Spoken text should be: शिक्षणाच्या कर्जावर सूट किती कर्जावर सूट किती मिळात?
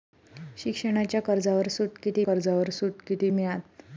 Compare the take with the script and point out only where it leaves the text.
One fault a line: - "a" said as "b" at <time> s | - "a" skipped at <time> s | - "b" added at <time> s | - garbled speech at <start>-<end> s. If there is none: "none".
none